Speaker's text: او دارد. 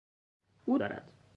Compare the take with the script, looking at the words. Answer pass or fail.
pass